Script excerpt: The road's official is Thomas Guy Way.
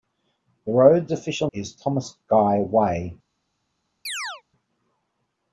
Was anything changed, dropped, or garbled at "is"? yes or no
no